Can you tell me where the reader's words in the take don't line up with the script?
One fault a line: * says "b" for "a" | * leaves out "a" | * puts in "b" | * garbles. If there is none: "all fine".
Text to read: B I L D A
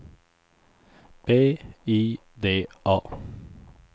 * leaves out "L"